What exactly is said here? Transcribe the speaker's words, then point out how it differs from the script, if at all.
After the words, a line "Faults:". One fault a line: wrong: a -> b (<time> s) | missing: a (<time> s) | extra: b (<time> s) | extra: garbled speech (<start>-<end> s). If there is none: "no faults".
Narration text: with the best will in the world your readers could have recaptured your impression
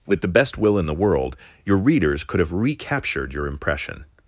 with the best will in the world your readers could have recaptured your impression
Faults:
no faults